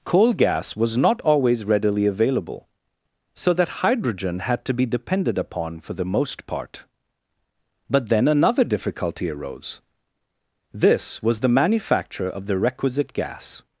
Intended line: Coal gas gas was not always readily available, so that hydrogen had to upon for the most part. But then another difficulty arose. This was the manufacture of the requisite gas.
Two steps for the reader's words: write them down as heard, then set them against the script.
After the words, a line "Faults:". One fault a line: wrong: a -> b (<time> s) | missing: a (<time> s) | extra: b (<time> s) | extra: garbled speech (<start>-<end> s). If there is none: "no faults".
Coal gas was not always readily available, so that hydrogen had to be depended upon for the most part. But then another difficulty arose. This was the manufacture of the requisite gas.
Faults:
missing: gas (0.8 s)
extra: be depended (4.7 s)